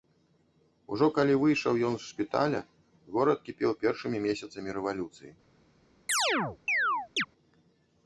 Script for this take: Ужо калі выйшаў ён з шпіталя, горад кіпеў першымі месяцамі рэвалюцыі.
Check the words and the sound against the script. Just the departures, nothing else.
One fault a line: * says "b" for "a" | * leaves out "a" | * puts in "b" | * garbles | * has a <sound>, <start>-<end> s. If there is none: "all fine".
* has a chirp, 6.1-7.3 s